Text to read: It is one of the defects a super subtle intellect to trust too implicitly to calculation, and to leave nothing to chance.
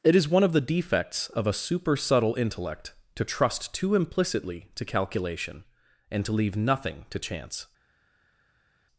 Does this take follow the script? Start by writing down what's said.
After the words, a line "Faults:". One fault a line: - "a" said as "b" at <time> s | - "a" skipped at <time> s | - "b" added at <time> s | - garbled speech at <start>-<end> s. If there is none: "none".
It is one of the defects of a super subtle intellect to trust too implicitly to calculation, and to leave nothing to chance.
Faults:
- "of" added at 1.3 s